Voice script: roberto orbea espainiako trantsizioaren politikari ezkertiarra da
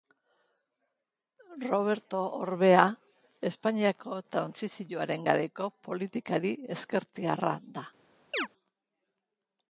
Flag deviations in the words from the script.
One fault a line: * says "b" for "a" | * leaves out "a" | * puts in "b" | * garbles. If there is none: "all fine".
* puts in "garaiko"